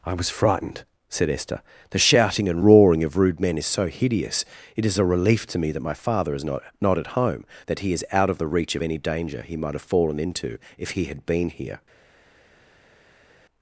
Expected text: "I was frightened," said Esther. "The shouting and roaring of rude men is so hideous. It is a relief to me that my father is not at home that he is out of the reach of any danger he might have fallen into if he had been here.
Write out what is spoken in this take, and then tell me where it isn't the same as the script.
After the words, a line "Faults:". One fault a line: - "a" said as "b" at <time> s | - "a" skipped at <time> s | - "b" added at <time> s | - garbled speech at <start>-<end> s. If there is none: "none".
"I was frightened," said Esther. "The shouting and roaring of rude men is so hideous. It is a relief to me that my father is not not at home that he is out of the reach of any danger he might have fallen into if he had been here.
Faults:
- "not" added at 6.8 s